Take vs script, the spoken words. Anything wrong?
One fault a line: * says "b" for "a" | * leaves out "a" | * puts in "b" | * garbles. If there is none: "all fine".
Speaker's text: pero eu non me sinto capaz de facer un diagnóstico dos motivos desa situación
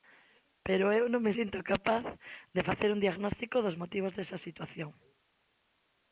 all fine